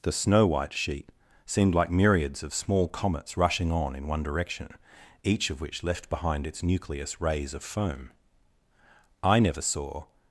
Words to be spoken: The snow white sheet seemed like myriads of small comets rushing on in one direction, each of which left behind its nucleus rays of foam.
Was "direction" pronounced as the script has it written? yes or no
yes